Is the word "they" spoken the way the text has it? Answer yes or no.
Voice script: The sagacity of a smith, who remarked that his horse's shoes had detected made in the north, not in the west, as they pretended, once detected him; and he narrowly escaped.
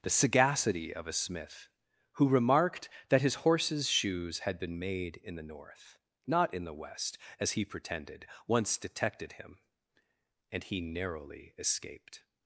no